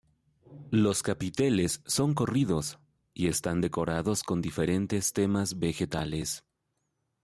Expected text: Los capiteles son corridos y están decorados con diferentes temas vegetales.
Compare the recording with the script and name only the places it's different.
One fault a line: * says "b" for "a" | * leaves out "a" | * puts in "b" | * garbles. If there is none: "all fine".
all fine